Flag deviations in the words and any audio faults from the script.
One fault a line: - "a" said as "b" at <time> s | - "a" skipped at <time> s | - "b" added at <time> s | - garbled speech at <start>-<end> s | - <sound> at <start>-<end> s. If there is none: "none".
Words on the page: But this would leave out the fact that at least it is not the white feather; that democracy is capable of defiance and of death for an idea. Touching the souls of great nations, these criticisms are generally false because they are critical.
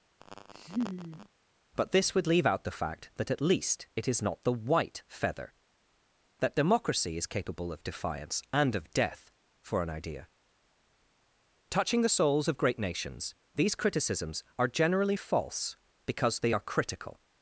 - laugh at 0.2-1.3 s